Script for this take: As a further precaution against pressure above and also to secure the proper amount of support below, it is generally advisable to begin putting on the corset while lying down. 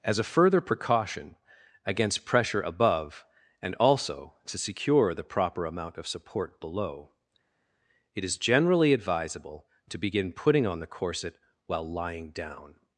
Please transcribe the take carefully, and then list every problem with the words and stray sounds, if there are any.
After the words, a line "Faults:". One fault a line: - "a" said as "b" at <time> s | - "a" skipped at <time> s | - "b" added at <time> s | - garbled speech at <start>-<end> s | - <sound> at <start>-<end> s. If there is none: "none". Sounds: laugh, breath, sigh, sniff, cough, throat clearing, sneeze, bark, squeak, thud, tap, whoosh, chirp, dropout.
As a further precaution against pressure above and also to secure the proper amount of support below, it is generally advisable to begin putting on the corset while lying down.
Faults:
none